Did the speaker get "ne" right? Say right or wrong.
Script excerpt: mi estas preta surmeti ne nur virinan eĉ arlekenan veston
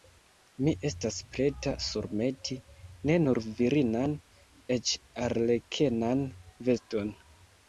right